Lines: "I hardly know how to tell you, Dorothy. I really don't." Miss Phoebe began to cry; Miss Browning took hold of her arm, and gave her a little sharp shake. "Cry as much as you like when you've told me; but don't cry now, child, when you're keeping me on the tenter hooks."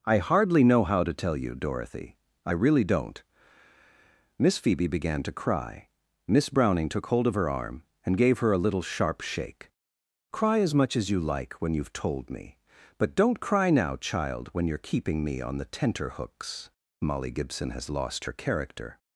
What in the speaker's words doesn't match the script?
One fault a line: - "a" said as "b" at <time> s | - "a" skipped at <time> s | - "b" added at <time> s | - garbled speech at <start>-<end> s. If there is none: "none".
- "Molly Gibson has lost her character" added at 17.0 s